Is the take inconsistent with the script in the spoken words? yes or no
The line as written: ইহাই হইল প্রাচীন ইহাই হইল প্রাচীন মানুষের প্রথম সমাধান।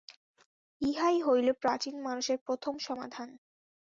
yes